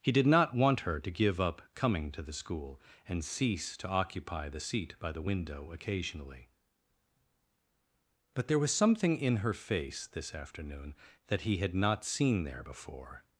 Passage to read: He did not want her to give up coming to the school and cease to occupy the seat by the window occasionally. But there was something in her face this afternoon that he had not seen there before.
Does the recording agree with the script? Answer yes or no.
yes